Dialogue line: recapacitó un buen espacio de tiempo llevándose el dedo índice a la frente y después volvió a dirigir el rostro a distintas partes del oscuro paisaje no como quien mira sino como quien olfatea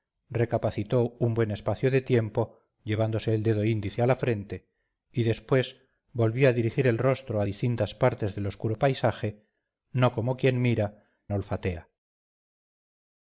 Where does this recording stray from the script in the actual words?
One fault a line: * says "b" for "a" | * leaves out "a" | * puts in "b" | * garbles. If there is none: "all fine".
* leaves out "sino como quien"